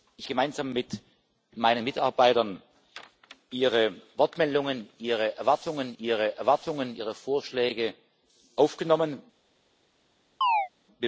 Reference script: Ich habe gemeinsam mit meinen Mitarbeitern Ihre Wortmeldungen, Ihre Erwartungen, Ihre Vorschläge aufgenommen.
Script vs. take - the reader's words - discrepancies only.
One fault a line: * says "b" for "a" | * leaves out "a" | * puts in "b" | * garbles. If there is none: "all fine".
* leaves out "habe"
* puts in "Erwartungen Ihre"